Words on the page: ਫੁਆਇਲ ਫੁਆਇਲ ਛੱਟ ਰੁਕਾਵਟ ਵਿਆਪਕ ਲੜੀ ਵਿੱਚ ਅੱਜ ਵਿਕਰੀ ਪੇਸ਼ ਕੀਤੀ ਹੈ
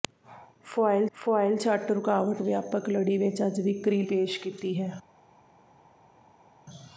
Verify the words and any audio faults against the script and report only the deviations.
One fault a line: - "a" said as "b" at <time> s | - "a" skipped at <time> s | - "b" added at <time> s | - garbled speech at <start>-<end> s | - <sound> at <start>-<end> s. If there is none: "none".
none